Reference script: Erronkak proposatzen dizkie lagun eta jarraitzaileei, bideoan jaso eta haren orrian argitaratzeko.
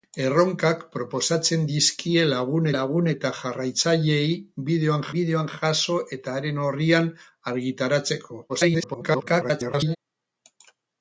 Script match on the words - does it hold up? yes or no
no